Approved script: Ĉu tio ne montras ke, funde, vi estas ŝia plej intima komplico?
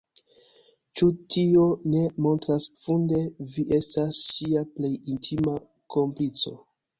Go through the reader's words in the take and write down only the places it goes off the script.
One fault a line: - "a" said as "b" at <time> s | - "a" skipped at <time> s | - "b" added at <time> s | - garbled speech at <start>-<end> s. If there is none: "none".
- "ke" skipped at 2.7 s